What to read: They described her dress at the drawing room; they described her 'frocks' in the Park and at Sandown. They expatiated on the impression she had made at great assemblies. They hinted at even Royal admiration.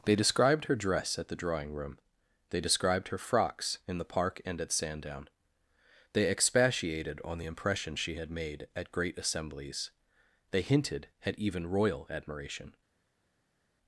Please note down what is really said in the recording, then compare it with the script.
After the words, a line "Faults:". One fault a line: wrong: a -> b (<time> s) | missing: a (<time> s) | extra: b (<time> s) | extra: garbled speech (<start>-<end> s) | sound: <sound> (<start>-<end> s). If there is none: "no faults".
They described her dress at the drawing room; they described her 'frocks' in the Park and at Sandown. They expatiated on the impression she had made at great assemblies. They hinted at even Royal admiration.
Faults:
no faults